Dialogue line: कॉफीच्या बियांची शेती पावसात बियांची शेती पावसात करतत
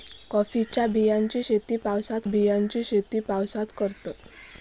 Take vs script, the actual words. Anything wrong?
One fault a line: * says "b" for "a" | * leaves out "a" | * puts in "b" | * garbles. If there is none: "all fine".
all fine